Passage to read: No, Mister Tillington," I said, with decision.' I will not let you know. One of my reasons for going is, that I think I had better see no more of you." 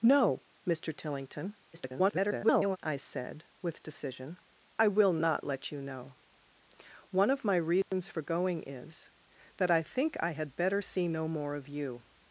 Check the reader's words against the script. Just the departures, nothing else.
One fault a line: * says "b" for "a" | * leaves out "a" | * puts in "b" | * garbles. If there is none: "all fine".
* garbles